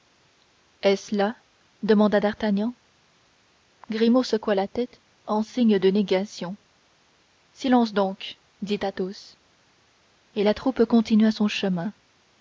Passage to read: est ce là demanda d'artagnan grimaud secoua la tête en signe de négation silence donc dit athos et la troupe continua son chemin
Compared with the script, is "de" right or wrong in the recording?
right